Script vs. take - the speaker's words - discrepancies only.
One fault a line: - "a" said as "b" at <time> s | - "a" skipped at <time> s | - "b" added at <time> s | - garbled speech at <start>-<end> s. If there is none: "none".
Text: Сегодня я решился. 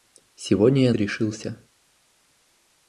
none